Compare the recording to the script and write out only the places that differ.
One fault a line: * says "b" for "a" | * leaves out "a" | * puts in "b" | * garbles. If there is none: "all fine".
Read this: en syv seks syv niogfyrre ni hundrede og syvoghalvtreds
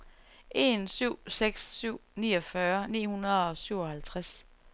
all fine